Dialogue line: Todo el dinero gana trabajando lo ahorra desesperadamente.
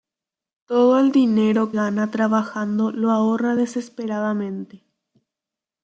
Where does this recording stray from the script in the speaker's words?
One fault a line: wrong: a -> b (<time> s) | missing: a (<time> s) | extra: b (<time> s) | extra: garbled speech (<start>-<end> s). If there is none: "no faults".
no faults